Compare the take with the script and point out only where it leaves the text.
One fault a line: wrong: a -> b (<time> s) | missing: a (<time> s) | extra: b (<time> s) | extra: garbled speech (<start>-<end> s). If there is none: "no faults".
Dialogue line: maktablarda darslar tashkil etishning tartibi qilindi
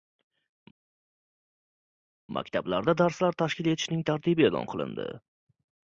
extra: e'lon (4.5 s)